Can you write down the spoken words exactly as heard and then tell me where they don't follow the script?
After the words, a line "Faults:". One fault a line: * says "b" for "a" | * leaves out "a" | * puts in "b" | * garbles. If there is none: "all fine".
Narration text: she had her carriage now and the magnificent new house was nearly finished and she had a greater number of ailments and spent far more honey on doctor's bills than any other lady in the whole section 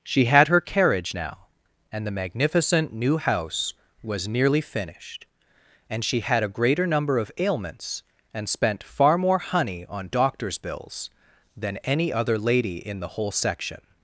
she had her carriage now and the magnificent new house was nearly finished and she had a greater number of ailments and spent far more honey on doctor's bills than any other lady in the whole section
Faults:
all fine